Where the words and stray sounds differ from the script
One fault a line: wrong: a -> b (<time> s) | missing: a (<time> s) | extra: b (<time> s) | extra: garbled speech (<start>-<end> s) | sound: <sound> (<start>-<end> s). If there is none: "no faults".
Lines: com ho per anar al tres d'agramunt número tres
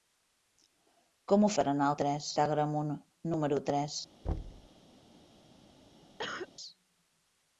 sound: thud (4.2-4.7 s)
sound: cough (6.2-6.5 s)